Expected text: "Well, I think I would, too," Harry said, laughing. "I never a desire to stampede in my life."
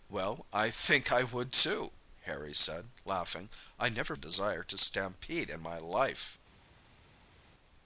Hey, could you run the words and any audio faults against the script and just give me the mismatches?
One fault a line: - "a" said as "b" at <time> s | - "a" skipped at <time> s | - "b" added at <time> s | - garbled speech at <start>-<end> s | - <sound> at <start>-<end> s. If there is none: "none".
none